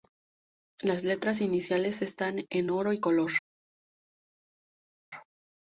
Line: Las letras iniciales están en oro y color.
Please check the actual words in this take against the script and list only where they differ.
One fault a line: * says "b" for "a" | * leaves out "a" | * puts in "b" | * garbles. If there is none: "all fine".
all fine